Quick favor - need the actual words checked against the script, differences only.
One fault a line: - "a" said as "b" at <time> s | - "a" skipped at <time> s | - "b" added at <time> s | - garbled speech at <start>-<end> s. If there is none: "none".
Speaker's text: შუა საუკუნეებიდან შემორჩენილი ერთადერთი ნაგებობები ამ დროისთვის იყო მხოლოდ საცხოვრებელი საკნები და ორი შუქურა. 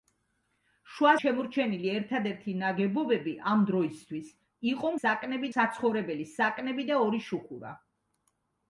- "საუკუნეებიდან" skipped at 1.1 s
- "მხოლოდ" said as "საკნები" at 5.0 s